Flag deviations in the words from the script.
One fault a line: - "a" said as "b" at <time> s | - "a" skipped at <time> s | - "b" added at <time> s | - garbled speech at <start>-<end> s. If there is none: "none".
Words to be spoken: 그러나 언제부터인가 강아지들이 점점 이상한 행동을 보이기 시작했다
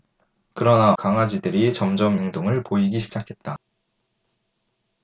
- "언제부터인가" skipped at 0.9 s
- "이상한" skipped at 2.2 s